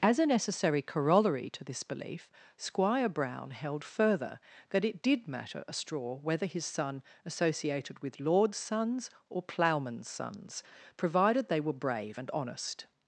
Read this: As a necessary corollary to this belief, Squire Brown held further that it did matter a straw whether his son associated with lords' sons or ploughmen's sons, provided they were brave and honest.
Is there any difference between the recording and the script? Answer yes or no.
no